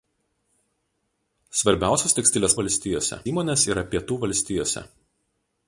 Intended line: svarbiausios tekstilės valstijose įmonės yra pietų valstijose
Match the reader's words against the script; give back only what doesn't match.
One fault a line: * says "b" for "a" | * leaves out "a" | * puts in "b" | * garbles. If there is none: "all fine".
all fine